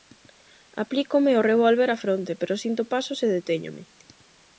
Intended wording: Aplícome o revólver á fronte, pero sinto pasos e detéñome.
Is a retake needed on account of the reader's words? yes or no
no